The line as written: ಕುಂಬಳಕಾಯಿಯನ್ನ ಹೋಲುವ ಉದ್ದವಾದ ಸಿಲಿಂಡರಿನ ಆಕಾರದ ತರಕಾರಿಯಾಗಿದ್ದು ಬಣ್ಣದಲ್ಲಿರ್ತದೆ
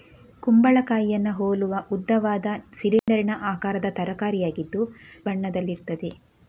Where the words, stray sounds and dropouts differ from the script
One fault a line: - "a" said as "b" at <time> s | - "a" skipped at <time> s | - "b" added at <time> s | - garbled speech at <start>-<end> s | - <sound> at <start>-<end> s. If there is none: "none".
- dropout at 3.0-3.1 s